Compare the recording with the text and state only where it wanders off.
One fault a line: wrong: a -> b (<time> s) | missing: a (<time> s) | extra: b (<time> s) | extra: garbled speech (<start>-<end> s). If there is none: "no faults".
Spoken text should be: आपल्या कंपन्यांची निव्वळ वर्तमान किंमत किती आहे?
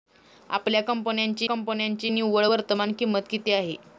extra: कंपन्यांची (1.4 s)